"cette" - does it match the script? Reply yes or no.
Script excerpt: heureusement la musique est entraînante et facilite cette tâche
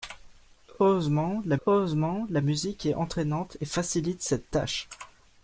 yes